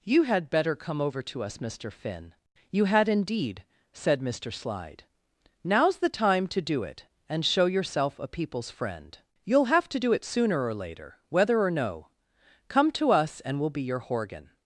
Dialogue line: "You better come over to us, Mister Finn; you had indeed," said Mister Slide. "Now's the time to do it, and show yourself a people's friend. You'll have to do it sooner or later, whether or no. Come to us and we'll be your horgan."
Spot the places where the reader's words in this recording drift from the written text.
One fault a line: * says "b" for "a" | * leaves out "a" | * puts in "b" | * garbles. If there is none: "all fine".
* puts in "had"